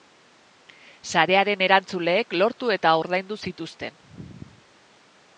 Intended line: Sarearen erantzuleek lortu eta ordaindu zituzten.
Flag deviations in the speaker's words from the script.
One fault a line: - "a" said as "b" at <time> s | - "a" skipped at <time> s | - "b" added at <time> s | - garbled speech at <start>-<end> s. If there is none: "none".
none